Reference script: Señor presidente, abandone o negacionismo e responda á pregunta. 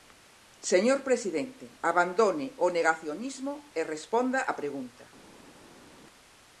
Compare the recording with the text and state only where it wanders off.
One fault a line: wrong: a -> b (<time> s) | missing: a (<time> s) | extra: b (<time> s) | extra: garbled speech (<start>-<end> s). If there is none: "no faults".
no faults